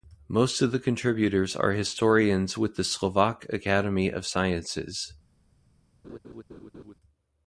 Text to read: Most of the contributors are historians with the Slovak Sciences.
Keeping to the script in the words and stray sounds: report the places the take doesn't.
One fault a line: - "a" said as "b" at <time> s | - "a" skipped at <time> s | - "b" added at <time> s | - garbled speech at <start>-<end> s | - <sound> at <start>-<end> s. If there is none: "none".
- "Academy of" added at 3.5 s
- laugh at 6.0-6.9 s